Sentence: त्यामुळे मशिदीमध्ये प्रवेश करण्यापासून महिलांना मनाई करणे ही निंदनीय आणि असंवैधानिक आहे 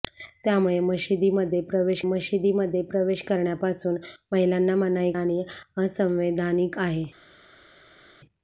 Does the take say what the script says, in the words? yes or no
no